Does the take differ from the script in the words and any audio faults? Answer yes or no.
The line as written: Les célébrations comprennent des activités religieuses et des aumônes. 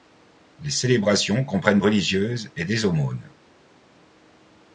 yes